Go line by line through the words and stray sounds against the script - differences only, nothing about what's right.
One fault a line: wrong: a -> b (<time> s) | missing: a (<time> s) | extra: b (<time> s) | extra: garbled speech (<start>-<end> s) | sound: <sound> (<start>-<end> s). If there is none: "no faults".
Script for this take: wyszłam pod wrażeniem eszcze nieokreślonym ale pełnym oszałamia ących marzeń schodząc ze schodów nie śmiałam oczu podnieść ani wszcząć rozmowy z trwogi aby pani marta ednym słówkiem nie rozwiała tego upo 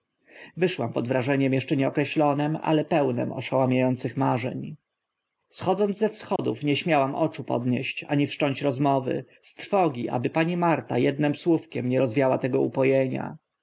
sound: dropout (6.4-6.4 s)